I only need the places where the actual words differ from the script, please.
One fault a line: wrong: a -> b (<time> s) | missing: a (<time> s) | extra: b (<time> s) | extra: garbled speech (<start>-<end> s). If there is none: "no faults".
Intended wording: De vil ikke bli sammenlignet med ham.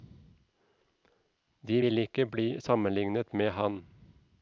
no faults